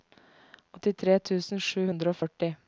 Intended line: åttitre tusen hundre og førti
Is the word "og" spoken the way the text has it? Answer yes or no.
yes